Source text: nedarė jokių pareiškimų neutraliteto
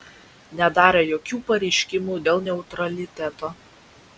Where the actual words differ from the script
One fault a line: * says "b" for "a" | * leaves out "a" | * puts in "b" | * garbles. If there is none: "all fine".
* puts in "dėl"